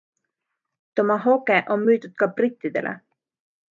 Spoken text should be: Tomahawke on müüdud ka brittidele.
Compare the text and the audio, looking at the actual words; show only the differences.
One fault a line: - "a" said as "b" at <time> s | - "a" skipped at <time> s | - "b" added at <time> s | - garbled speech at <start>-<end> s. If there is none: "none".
none